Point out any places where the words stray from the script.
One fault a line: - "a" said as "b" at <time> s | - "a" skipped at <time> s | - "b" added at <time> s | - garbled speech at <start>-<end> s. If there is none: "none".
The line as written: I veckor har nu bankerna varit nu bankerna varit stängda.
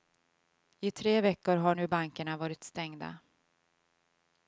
- "tre" added at 0.9 s
- "nu bankerna varit" skipped at 2.6 s